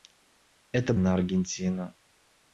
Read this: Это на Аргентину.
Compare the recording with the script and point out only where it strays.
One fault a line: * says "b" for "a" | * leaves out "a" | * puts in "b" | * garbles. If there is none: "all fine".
all fine